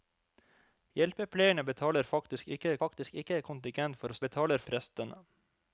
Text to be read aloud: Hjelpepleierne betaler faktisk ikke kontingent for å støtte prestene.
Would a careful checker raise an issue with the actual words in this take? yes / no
yes